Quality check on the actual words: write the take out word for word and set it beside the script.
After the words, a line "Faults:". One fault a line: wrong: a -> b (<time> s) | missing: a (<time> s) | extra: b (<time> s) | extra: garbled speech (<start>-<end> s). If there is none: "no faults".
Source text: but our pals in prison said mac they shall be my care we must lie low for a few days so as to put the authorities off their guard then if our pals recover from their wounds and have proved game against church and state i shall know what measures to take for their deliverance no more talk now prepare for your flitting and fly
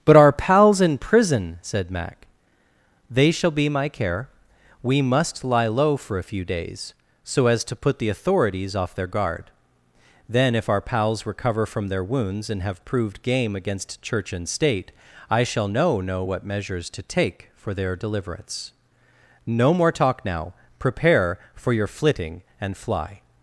but our pals in prison said mac they shall be my care we must lie low for a few days so as to put the authorities off their guard then if our pals recover from their wounds and have proved game against church and state i shall know know what measures to take for their deliverance no more talk now prepare for your flitting and fly
Faults:
extra: know (16.0 s)